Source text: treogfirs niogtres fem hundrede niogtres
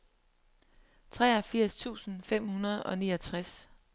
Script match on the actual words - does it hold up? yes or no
no